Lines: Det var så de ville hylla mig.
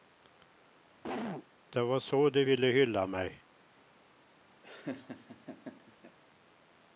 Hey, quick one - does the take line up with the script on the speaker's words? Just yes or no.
yes